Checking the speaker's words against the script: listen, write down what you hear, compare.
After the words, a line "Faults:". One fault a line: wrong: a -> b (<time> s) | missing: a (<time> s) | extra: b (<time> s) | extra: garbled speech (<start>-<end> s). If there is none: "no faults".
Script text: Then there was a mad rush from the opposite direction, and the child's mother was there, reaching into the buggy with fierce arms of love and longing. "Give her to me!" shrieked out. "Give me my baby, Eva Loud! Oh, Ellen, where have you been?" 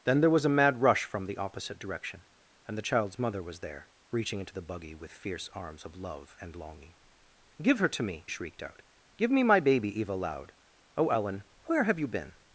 Then there was a mad rush from the opposite direction, and the child's mother was there, reaching into the buggy with fierce arms of love and longing. "Give her to me!" shrieked out. "Give me my baby, Eva Loud! Oh, Ellen, where have you been?"
Faults:
no faults